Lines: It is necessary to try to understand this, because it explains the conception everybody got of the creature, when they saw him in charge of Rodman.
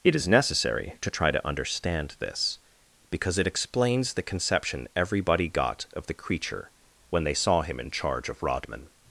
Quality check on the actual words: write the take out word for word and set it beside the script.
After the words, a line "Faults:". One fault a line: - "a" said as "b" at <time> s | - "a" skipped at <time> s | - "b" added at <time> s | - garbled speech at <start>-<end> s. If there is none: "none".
It is necessary to try to understand this, because it explains the conception everybody got of the creature, when they saw him in charge of Rodman.
Faults:
none